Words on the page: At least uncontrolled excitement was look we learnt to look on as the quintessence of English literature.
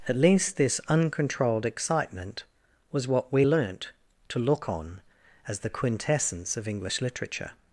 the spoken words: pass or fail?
fail